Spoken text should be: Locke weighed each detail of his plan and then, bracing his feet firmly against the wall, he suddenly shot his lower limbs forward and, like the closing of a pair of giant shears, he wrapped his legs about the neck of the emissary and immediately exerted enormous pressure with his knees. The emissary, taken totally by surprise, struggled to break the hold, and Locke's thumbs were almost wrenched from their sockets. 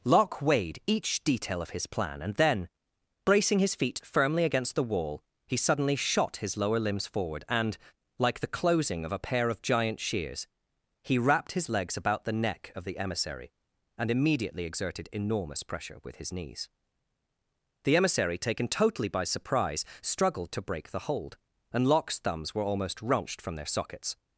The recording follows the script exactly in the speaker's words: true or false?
true